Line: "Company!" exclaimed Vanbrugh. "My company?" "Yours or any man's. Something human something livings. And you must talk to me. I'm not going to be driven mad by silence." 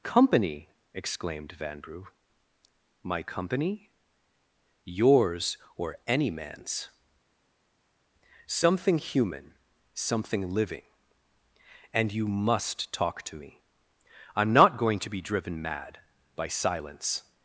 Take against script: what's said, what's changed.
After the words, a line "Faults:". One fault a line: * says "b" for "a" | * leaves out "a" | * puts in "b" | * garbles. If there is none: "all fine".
"Company!" exclaimed Vanbrugh. "My company?" "Yours or any man's. Something human something living. And you must talk to me. I'm not going to be driven mad by silence."
Faults:
* says "living" for "livings"